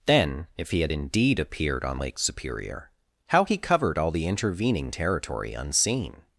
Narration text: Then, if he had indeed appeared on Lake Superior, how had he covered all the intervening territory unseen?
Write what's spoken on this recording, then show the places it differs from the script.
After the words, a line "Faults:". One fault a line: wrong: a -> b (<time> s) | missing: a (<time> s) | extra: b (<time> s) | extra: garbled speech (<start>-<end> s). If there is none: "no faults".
Then, if he had indeed appeared on Lake Superior, how he covered all the intervening territory unseen?
Faults:
missing: had (3.4 s)